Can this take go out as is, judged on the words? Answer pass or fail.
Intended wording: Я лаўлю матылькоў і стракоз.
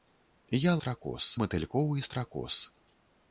fail